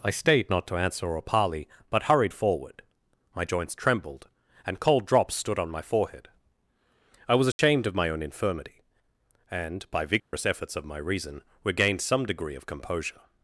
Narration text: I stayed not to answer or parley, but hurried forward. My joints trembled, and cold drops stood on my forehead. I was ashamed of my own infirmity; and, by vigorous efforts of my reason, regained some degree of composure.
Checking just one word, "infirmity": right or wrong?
right